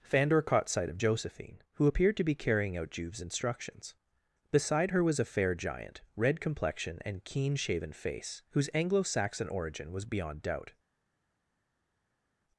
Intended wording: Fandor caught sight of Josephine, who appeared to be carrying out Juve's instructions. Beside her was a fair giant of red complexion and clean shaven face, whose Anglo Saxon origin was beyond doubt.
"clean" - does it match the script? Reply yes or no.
no